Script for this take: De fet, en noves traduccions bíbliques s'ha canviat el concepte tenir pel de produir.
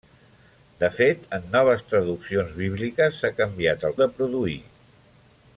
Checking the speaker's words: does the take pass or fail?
fail